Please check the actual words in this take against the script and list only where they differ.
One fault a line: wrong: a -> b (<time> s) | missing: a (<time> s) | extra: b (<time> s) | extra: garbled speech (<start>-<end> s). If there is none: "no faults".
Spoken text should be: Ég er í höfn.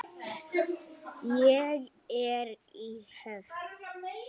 no faults